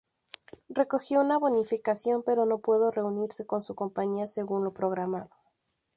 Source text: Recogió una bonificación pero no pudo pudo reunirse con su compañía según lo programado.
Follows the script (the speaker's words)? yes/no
no